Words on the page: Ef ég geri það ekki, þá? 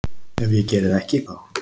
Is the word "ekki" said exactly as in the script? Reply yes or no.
yes